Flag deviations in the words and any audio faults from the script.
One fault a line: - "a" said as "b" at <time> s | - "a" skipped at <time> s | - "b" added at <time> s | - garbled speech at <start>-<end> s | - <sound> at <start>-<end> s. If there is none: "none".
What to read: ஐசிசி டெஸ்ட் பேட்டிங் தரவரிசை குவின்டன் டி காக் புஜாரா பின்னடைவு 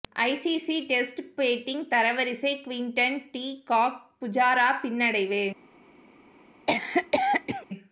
- cough at 6.7-7.7 s